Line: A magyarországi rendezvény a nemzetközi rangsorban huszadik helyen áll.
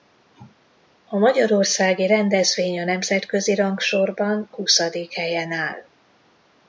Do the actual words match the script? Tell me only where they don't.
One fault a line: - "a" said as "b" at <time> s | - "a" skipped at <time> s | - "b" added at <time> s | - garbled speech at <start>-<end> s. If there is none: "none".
none